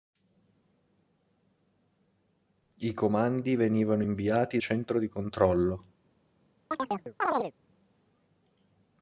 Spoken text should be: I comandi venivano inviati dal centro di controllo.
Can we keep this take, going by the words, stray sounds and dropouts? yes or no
no